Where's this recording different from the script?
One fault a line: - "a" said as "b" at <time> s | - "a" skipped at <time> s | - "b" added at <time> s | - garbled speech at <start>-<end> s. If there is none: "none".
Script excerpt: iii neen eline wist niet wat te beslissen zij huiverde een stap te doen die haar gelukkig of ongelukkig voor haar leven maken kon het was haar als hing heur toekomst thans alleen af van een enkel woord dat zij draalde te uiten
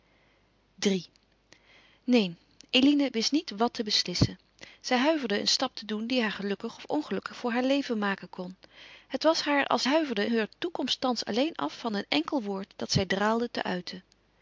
- "hing" said as "huiverde" at 9.8 s